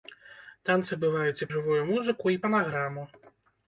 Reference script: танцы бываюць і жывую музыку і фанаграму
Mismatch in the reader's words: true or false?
false